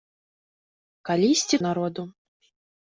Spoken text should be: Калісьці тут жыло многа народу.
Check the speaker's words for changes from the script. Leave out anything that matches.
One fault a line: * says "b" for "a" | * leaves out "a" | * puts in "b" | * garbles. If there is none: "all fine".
* leaves out "тут жыло многа"